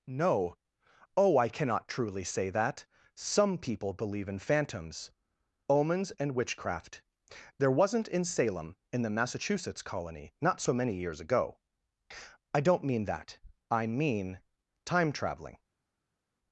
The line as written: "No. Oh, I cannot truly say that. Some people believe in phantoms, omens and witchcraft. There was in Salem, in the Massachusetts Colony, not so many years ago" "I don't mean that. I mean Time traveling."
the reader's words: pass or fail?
fail